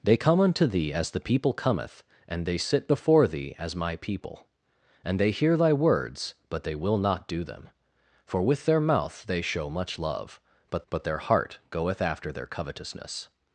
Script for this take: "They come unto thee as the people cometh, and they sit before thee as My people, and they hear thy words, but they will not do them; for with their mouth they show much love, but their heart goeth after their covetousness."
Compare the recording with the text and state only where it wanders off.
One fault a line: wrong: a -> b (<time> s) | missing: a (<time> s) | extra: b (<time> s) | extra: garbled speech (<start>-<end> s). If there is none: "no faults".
extra: but (10.9 s)